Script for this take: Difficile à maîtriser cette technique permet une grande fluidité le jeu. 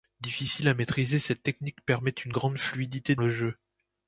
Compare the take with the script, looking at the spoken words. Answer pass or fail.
pass